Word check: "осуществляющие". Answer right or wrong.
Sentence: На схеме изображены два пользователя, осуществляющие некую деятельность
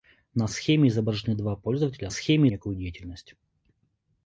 wrong